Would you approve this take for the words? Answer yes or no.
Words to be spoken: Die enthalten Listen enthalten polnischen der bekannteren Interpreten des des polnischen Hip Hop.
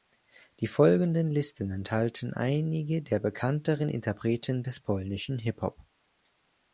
no